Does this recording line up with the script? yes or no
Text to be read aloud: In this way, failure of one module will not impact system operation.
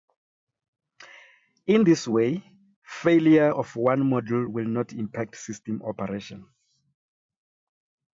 yes